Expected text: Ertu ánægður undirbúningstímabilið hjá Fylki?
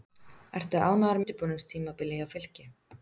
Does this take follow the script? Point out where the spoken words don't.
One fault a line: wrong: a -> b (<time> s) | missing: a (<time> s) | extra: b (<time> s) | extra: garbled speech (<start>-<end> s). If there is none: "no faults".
no faults